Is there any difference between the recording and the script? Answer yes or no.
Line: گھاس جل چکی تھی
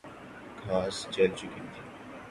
no